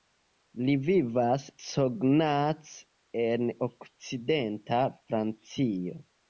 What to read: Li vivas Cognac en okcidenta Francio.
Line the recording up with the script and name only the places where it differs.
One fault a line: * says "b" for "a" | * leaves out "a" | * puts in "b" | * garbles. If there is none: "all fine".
all fine